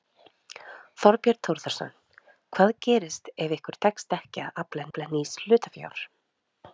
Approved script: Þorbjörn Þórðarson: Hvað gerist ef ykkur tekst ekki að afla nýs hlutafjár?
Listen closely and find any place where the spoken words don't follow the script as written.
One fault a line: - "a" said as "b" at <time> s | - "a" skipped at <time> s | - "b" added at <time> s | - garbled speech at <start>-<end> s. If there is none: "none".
- "afla" added at 4.9 s